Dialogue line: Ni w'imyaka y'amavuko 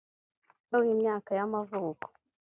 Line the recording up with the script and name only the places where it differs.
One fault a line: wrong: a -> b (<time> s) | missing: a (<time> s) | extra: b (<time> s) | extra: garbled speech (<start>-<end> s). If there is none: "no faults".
no faults